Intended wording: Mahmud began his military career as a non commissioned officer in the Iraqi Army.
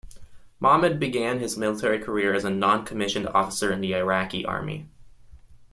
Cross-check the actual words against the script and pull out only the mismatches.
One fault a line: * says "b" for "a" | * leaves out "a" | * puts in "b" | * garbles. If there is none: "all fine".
all fine